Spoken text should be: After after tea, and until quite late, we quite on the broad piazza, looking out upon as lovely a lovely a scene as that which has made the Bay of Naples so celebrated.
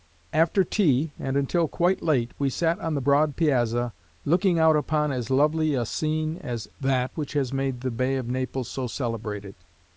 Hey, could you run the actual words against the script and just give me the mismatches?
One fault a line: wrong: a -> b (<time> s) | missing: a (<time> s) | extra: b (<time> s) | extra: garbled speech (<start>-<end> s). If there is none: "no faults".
missing: after (0.6 s)
wrong: quite -> sat (2.5 s)
missing: lovely a (5.8 s)